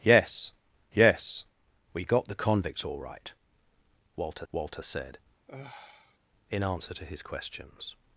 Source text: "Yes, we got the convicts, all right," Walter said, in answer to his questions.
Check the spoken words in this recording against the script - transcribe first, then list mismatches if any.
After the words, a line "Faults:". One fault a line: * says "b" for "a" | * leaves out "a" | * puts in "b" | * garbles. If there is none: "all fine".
"Yes yes, we got the convicts, all right," Walter Walter said, in answer to his questions.
Faults:
* puts in "yes"
* puts in "Walter"